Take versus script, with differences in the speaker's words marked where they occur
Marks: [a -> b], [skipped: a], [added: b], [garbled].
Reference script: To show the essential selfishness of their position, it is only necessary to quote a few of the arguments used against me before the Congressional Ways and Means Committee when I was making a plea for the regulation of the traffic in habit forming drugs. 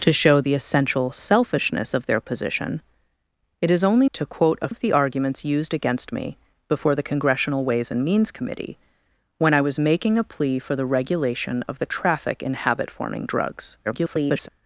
To show the essential selfishness of their position, it is only [skipped: necessary] to quote a [skipped: few] of the arguments used against me before the Congressional Ways and Means Committee when I was making a plea for the regulation of the traffic in habit forming drugs. [garbled]